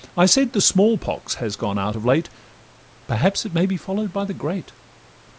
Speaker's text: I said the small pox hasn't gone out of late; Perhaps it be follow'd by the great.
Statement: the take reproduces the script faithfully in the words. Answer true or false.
false